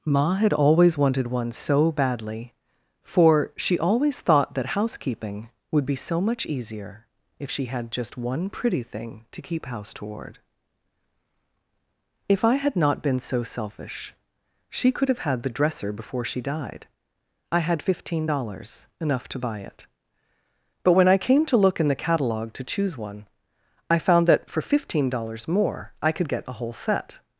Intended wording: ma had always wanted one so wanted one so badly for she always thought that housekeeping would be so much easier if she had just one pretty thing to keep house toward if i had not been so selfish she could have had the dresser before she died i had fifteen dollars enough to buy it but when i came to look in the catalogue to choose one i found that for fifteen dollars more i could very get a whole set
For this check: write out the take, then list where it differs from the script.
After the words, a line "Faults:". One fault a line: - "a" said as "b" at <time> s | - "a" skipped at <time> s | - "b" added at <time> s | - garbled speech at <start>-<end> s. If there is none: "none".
ma had always wanted one so badly for she always thought that housekeeping would be so much easier if she had just one pretty thing to keep house toward if i had not been so selfish she could have had the dresser before she died i had fifteen dollars enough to buy it but when i came to look in the catalogue to choose one i found that for fifteen dollars more i could get a whole set
Faults:
- "wanted one so" skipped at 1.9 s
- "very" skipped at 26.3 s